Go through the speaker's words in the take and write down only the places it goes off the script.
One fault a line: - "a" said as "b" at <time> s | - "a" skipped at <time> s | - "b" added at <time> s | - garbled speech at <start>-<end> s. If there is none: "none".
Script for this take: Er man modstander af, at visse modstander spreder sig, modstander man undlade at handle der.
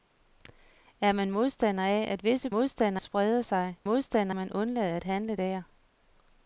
none